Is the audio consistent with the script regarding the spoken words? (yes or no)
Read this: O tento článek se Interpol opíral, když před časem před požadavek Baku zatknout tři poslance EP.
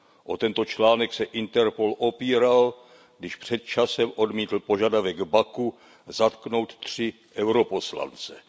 no